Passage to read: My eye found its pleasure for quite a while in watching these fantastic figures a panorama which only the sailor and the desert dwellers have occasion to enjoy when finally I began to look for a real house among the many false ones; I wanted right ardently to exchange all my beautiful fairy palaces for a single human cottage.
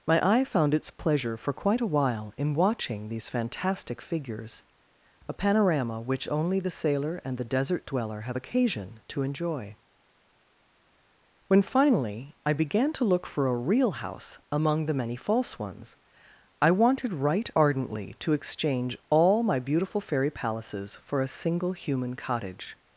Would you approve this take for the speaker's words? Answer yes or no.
no